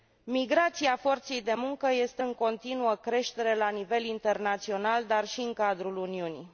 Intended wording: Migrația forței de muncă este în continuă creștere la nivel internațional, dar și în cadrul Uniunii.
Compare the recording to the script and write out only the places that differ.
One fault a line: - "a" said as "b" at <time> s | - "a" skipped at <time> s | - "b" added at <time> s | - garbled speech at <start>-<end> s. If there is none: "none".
none